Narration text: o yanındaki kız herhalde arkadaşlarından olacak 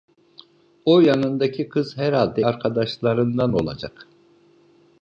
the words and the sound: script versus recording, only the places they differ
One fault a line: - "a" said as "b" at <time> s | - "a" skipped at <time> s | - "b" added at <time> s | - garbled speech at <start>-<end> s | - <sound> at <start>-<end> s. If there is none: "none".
none